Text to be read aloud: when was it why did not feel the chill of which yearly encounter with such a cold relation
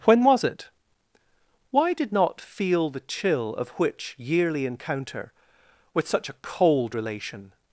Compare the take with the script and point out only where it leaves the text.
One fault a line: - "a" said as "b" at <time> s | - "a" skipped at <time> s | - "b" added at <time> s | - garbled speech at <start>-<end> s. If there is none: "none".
none